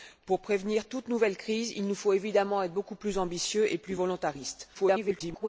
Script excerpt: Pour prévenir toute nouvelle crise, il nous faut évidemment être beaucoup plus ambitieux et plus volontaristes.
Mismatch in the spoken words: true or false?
true